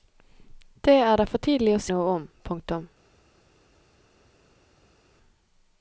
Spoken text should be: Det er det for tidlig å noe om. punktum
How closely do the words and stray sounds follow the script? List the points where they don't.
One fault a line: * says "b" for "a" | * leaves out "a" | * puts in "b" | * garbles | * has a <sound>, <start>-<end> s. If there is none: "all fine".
all fine